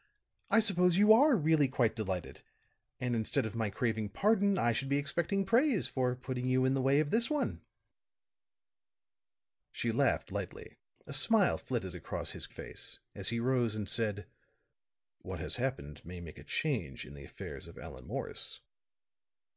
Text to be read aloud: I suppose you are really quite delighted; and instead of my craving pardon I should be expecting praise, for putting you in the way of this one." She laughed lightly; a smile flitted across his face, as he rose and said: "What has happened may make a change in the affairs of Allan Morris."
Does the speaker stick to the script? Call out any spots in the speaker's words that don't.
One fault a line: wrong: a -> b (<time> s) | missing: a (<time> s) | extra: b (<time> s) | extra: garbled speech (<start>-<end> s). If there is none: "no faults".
no faults